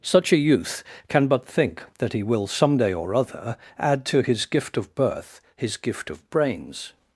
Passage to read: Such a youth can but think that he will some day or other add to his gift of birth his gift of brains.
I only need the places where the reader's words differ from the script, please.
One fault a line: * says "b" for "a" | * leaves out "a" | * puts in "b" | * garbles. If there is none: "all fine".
all fine